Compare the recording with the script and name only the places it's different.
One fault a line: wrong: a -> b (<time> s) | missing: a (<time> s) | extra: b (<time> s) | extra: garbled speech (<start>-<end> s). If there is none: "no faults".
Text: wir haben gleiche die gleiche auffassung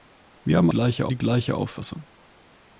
no faults